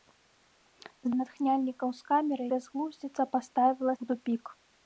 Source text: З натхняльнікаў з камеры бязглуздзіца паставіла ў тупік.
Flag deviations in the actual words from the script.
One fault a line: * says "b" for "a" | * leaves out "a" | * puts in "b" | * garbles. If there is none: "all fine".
all fine